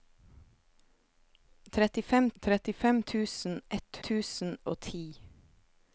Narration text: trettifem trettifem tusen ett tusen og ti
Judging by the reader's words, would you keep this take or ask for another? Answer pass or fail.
pass